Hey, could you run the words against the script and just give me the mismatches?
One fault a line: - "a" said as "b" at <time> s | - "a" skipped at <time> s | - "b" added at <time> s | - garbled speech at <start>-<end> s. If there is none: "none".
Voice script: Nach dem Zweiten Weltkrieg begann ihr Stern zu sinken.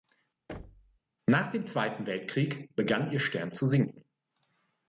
none